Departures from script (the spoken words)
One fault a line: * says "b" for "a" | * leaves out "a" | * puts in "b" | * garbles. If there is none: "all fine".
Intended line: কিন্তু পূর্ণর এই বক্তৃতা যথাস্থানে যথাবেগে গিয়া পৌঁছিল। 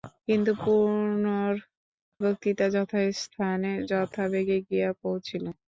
* leaves out "এই"